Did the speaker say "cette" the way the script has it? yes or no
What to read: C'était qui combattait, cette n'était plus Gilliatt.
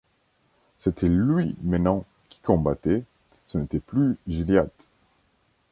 no